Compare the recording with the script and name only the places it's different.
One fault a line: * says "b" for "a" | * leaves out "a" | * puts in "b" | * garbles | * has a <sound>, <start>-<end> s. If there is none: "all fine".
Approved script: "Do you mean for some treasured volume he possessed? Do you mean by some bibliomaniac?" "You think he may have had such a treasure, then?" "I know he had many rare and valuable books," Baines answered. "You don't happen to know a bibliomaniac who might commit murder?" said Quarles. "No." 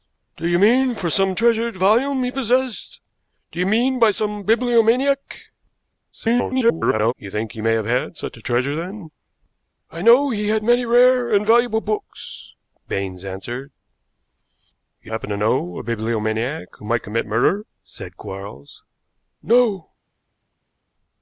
* garbles
* leaves out "don't"